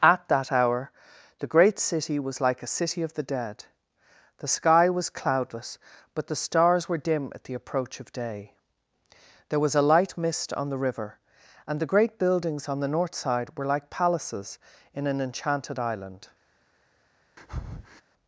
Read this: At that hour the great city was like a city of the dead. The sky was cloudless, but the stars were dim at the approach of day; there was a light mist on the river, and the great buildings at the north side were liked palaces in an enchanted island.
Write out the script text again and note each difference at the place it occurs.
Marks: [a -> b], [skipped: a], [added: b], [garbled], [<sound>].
At that hour the great city was like a city of the dead. The sky was cloudless, but the stars were dim at the approach of day; there was a light mist on the river, and the great buildings [at -> on] the north side were [liked -> like] palaces in an enchanted island. [breath]